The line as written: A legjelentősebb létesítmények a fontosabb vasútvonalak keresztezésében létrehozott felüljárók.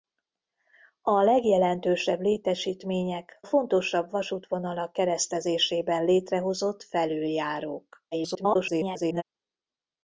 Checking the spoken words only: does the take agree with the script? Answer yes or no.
no